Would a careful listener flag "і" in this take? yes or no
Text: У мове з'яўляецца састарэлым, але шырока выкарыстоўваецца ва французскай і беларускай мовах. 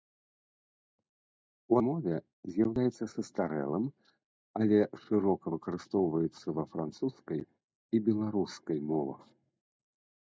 no